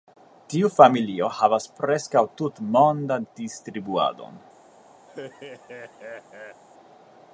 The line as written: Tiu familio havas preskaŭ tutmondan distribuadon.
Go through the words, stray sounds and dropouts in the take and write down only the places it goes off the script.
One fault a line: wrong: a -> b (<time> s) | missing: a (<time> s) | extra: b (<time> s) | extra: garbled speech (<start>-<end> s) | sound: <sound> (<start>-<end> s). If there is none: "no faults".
sound: laugh (5.1-6.6 s)